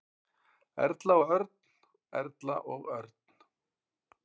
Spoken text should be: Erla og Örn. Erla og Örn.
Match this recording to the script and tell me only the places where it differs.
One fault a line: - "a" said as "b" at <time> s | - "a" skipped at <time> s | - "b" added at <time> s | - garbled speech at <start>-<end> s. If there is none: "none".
none